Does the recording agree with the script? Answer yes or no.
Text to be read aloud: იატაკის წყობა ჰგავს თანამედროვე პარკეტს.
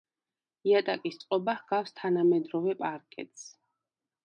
yes